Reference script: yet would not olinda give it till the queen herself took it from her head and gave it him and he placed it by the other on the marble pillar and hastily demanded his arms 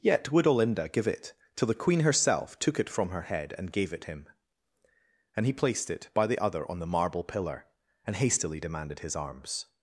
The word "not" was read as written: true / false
false